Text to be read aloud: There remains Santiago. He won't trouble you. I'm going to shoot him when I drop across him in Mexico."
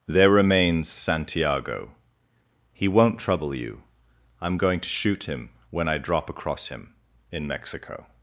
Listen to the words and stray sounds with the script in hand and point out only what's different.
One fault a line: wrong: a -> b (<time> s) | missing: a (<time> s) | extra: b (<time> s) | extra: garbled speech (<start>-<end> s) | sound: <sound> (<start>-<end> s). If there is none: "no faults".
no faults